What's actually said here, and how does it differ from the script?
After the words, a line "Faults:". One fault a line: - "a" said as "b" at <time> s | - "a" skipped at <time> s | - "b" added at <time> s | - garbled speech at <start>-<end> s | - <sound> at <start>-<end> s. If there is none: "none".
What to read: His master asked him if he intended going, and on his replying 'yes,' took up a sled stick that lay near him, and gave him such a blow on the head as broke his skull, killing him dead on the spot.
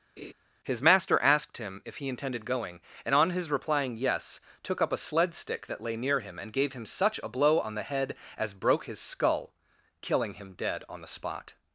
His master asked him if he intended going, and on his replying 'yes,' took up a sled stick that lay near him, and gave him such a blow on the head as broke his skull, killing him dead on the spot.
Faults:
- laugh at 0.2-0.3 s